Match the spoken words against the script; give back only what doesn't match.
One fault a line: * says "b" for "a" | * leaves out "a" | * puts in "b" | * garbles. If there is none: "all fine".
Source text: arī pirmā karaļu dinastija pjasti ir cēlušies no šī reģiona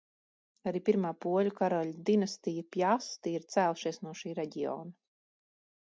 * puts in "poļu"